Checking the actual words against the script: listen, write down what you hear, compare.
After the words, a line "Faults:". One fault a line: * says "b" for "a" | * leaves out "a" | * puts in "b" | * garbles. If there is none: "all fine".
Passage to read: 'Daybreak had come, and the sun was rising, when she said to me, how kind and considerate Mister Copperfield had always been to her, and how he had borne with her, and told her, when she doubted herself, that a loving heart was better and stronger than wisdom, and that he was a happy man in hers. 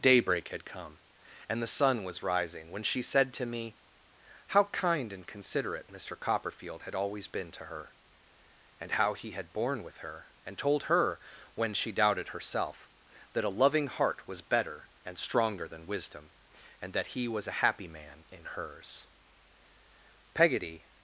'Daybreak had come, and the sun was rising, when she said to me, how kind and considerate Mister Copperfield had always been to her, and how he had borne with her, and told her, when she doubted herself, that a loving heart was better and stronger than wisdom, and that he was a happy man in hers. "Peggotty
Faults:
* puts in "Peggotty"